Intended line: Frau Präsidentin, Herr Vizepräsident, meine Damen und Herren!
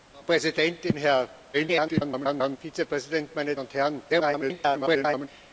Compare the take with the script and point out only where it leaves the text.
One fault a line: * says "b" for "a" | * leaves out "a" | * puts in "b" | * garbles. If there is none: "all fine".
* garbles
* leaves out "Damen"
* garbles